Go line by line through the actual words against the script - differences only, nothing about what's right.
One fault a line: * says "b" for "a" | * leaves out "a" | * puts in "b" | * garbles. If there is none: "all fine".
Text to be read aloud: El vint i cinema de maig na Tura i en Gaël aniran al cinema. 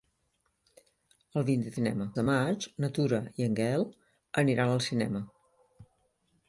all fine